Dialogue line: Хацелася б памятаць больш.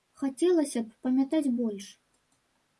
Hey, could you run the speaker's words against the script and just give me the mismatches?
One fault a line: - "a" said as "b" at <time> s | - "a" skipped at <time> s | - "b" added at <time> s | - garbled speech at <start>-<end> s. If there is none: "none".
none